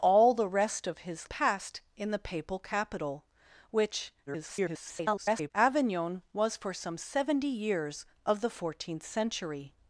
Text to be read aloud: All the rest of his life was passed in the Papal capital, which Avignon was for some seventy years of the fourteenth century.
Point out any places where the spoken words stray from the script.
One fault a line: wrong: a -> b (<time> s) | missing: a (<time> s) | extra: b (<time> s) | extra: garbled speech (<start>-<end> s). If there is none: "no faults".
missing: life was (1.3 s)
extra: garbled speech (4.3-5.5 s)